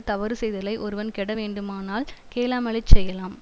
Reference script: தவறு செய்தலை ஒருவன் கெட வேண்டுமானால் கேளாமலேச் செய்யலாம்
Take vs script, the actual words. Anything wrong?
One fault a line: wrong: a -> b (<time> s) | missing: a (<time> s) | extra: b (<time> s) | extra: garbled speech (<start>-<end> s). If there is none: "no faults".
no faults